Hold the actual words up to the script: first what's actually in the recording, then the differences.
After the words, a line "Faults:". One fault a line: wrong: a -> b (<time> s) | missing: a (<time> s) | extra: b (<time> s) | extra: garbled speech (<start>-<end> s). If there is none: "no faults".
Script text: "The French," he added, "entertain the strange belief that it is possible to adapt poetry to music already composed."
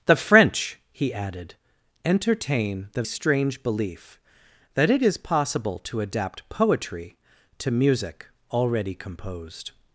"The French," he added, "entertain the strange belief that it is possible to adapt poetry to music already composed."
Faults:
no faults